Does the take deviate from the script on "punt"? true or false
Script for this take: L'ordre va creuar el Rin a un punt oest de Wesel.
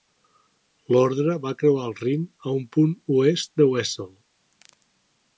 false